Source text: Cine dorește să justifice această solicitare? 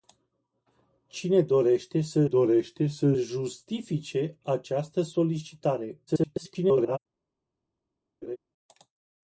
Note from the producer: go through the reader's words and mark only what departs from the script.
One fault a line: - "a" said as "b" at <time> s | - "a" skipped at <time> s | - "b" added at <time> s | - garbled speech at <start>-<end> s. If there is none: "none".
- "dorește să" added at 2.2 s
- garbled speech at 6.1-7.0 s